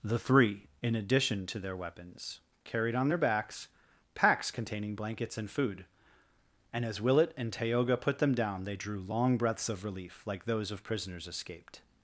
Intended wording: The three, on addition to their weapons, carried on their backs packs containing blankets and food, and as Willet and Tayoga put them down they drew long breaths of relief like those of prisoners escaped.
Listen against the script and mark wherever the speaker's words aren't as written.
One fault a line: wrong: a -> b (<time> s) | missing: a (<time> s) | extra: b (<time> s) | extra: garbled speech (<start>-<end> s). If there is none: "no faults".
wrong: on -> in (0.8 s)